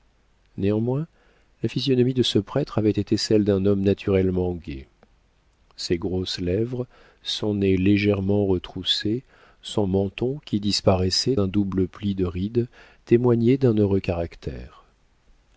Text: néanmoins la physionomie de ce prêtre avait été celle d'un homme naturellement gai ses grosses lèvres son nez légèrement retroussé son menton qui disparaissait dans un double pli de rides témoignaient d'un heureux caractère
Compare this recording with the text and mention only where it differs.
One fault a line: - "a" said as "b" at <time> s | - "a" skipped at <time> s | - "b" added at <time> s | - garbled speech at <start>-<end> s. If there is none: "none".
- "dans" skipped at 11.3 s